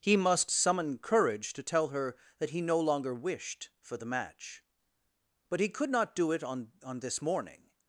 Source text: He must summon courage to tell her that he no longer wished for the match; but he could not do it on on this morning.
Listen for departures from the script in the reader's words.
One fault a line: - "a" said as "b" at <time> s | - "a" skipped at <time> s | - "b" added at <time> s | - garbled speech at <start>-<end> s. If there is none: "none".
none